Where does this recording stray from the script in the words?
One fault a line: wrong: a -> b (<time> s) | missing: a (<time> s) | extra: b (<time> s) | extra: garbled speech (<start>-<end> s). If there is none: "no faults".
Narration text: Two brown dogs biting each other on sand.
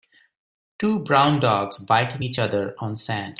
no faults